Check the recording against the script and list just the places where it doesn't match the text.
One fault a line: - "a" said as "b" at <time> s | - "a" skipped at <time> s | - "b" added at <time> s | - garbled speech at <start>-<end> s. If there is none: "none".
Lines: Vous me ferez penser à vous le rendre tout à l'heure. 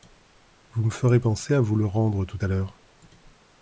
none